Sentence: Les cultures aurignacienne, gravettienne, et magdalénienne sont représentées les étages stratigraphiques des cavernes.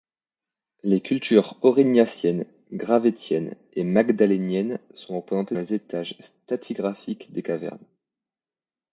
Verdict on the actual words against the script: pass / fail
pass